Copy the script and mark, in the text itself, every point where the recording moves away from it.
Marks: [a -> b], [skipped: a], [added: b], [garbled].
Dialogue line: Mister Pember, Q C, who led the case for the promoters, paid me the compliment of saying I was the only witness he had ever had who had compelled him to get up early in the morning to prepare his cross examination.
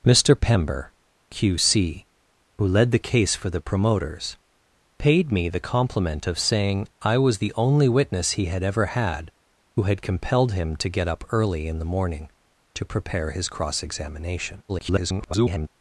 Mister Pember, Q C, who led the case for the promoters, paid me the compliment of saying I was the only witness he had ever had who had compelled him to get up early in the morning to prepare his cross examination. [garbled]